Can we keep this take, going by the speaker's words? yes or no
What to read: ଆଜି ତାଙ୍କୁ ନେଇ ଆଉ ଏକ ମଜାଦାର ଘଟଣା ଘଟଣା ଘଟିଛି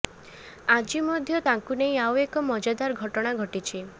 no